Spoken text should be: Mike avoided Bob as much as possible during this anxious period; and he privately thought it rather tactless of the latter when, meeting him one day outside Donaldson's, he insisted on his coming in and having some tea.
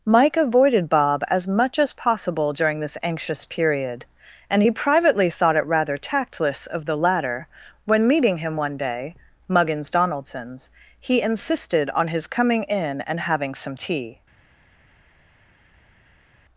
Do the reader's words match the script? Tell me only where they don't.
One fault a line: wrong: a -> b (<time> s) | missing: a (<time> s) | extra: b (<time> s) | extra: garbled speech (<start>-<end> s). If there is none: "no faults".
wrong: outside -> muggins (9.5 s)